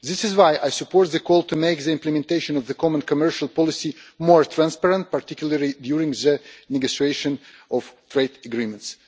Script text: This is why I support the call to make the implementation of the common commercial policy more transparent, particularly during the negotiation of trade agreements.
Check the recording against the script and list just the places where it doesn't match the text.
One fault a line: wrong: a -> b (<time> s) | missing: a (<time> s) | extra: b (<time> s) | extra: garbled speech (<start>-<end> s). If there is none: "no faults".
no faults